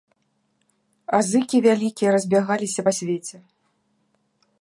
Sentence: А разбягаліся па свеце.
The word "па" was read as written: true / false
true